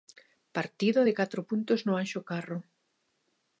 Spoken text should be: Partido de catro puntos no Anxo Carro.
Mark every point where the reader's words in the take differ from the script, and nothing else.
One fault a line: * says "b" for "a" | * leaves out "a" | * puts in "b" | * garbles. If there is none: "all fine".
all fine